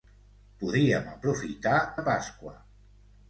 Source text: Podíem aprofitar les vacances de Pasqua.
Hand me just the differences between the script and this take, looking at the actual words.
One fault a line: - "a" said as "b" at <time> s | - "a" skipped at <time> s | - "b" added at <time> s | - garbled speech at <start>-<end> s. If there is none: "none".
- "les vacances" skipped at 1.8 s